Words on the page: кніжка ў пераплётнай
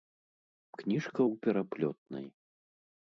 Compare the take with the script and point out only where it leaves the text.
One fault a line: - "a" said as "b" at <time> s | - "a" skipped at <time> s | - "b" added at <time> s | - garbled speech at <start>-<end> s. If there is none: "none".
none